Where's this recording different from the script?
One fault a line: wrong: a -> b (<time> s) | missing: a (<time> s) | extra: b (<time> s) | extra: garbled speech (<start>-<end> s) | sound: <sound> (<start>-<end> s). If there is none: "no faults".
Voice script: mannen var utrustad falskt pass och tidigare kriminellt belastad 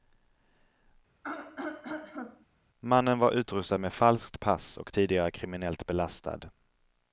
sound: throat clearing (1.2-2.5 s)
extra: med (3.8 s)